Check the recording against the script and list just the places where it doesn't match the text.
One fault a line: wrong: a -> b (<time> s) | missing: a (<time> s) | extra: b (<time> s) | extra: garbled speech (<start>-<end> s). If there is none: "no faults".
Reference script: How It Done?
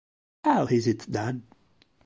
extra: Is (0.6 s)